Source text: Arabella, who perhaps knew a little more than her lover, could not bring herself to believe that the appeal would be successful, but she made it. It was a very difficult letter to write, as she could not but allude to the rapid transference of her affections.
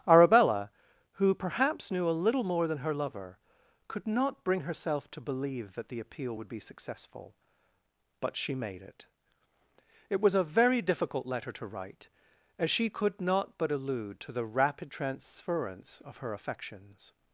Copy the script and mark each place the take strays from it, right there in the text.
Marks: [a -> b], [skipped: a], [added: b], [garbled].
Arabella, who perhaps knew a little more than her lover, could not bring herself to believe that the appeal would be successful, but she made it. It was a very difficult letter to write, as she could not but allude to the rapid transference of her affections.